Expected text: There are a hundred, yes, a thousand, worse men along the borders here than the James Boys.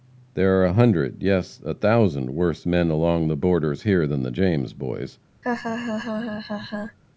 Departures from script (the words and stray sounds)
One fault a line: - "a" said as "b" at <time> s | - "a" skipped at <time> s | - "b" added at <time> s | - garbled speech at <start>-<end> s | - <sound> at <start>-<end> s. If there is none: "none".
- laugh at 5.4-7.0 s